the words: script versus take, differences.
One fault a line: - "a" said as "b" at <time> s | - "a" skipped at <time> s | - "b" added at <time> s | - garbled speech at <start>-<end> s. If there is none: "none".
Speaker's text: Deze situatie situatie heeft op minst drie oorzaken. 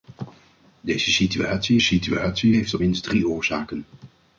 none